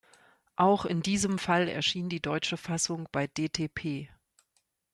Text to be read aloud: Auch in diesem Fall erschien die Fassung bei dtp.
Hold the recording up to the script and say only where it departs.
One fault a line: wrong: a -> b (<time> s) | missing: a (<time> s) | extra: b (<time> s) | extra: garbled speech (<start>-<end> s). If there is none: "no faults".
extra: deutsche (2.2 s)